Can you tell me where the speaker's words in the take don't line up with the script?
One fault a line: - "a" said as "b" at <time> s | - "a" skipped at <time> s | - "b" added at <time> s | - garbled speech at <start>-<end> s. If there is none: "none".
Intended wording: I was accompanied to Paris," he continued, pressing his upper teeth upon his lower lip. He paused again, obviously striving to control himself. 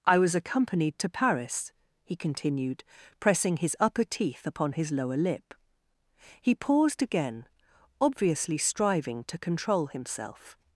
none